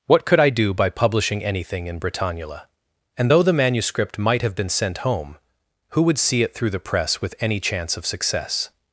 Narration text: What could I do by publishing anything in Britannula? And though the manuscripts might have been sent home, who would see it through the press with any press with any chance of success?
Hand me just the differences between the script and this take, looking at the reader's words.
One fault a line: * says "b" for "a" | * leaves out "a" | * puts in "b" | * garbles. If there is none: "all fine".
* says "manuscript" for "manuscripts"
* leaves out "press with any"